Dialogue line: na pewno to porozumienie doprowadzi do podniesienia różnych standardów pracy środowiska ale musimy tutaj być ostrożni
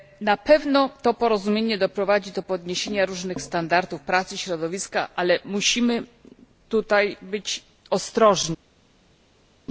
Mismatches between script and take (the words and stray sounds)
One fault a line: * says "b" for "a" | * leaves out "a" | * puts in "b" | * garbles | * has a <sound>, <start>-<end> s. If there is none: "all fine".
all fine